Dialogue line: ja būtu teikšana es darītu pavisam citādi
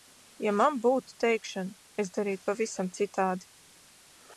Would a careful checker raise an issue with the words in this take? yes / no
yes